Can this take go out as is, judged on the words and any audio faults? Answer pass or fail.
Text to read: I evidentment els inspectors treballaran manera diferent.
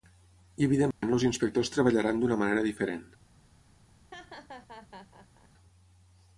fail